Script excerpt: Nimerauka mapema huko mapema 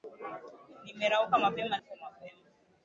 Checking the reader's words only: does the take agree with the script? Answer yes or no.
yes